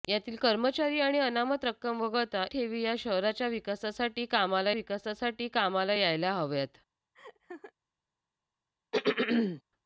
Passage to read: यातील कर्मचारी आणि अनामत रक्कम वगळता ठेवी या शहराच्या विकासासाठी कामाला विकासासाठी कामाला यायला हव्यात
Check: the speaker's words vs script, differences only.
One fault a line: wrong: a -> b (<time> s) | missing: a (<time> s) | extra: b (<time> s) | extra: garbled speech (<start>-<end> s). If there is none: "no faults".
no faults